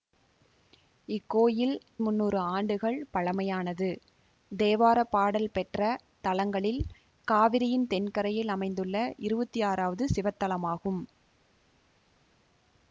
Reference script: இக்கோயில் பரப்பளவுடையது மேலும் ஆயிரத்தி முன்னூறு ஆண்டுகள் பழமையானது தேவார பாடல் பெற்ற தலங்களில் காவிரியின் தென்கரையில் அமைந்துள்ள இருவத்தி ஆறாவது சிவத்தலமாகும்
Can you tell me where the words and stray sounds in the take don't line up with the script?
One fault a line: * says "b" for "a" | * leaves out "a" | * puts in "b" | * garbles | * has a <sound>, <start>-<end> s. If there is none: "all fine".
* leaves out "பரப்பளவுடையது மேலும் ஆயிரத்தி"